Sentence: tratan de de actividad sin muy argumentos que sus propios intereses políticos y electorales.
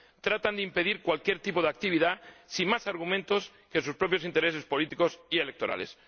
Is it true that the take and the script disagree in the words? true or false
true